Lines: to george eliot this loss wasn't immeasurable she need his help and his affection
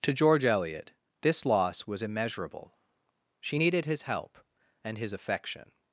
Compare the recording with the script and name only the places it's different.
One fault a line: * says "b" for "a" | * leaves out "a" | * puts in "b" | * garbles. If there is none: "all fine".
* says "was" for "wasn't"
* says "needed" for "need"